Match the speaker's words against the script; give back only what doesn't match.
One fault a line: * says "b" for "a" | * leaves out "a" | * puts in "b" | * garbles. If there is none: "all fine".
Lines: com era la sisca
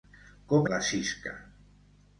* leaves out "era"